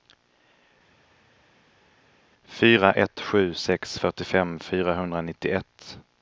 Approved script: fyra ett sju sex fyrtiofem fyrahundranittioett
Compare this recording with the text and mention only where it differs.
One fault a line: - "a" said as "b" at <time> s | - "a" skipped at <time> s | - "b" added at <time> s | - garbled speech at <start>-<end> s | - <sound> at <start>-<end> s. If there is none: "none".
none